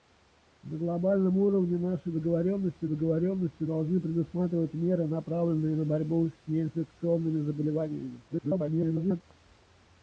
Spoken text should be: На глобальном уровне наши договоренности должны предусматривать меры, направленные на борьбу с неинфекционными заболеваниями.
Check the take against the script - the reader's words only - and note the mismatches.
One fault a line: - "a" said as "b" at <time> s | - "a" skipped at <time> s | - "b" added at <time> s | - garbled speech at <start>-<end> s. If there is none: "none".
- "договоренности" added at 2.8 s
- garbled speech at 8.3-9.2 s